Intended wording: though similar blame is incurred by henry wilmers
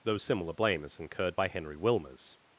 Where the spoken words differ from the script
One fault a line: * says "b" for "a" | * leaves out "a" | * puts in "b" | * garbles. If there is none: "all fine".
all fine